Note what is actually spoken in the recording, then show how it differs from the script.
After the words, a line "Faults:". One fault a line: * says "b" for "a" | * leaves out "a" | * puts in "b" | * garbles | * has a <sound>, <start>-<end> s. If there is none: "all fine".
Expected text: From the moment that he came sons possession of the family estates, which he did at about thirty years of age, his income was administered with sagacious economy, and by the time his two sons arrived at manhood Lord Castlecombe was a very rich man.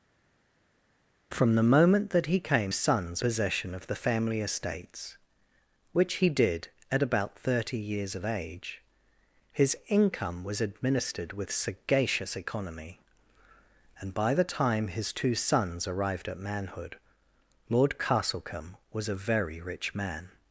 From the moment that he came sons possession of the family estates, which he did at about thirty years of age, his income was administered with sagacious economy, and by the time his two sons arrived at manhood Lord Castlecombe was a very rich man.
Faults:
all fine